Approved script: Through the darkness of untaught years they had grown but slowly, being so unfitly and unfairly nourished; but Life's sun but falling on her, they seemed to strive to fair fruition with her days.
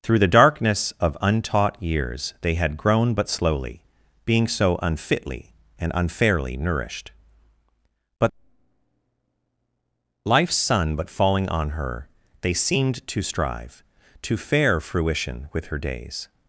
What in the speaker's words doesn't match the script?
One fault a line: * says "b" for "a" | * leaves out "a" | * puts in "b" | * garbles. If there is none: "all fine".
all fine